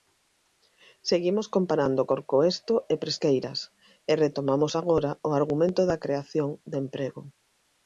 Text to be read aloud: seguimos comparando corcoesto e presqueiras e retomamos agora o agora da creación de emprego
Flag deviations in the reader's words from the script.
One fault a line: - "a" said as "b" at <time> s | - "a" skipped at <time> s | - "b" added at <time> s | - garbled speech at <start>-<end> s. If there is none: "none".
- "agora" said as "argumento" at 5.4 s